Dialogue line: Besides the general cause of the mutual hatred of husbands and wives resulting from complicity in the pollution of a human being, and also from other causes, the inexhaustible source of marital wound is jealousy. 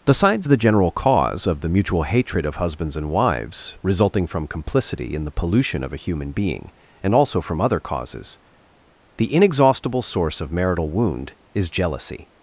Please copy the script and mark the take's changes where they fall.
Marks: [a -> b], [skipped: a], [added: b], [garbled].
Besides the general cause of the mutual hatred of husbands and wives resulting from complicity in the pollution of a human being, and also from other causes, the inexhaustible source of marital wound is jealousy.